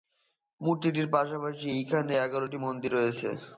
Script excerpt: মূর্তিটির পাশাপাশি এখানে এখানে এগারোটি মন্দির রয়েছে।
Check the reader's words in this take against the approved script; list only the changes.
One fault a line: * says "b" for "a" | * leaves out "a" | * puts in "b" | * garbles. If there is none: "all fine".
* leaves out "এখানে"